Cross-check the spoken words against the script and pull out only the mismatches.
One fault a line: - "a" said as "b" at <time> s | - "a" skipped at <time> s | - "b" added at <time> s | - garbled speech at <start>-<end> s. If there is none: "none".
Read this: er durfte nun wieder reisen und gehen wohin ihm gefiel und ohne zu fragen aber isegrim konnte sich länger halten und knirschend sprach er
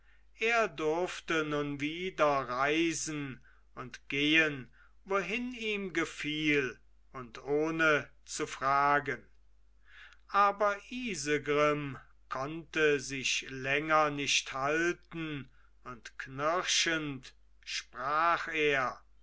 - "nicht" added at 14.1 s